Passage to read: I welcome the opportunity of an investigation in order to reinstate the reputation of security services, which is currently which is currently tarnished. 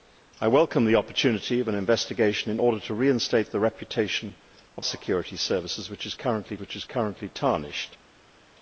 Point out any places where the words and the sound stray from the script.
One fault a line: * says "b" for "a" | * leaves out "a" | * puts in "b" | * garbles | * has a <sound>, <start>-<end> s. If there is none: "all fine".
all fine